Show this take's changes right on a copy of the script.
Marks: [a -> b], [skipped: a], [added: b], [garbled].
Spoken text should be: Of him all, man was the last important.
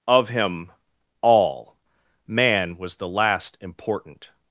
Of him all, man was the last important.